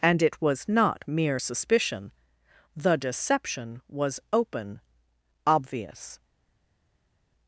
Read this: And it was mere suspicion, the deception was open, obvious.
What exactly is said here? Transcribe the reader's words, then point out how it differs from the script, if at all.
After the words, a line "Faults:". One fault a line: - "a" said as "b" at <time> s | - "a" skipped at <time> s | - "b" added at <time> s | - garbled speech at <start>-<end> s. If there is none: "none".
And it was not mere suspicion, the deception was open, obvious.
Faults:
- "not" added at 0.7 s